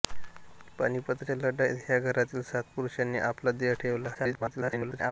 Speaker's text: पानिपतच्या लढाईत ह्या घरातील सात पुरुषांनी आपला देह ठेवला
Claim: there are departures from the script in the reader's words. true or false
true